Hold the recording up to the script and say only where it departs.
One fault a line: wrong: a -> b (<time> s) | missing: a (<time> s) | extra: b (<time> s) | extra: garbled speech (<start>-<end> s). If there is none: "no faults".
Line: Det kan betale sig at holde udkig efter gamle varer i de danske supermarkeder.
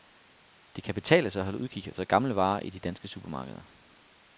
no faults